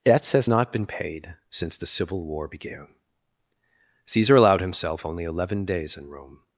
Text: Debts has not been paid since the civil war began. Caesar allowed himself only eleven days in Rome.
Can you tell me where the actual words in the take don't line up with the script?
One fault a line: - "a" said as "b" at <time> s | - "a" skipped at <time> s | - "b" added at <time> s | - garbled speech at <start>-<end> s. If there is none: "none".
none